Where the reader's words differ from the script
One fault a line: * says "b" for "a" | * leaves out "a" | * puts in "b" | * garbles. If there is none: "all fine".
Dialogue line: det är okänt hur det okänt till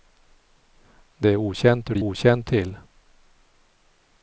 all fine